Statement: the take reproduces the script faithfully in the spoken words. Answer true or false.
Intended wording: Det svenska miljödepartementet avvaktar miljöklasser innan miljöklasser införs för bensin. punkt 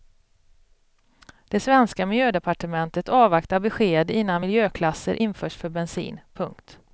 false